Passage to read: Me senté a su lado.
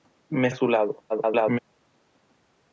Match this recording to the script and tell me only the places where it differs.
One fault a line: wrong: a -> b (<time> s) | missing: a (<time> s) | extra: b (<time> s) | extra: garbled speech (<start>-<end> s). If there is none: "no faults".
missing: senté (0.5 s)
extra: garbled speech (1.1-1.6 s)